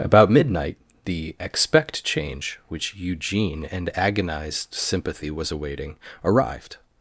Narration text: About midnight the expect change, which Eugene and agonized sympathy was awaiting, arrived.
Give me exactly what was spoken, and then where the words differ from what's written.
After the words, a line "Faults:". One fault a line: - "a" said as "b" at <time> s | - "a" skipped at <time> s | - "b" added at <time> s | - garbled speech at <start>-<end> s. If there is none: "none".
About midnight the expect change, which Eugene and agonized sympathy was awaiting, arrived.
Faults:
none